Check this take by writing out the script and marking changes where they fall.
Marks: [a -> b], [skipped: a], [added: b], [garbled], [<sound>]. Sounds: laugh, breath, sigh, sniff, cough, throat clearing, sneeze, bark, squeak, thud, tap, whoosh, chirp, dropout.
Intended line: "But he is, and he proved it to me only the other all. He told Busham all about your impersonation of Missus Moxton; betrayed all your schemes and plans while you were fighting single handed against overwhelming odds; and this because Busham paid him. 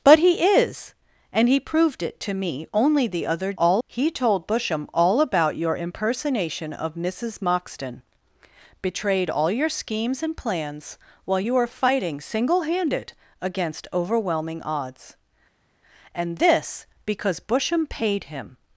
"But he is, and he proved it to me only the other all. He told Busham all about your impersonation of Missus Moxton; betrayed all your schemes and plans while you were fighting single handed against overwhelming odds; and this because Busham paid him.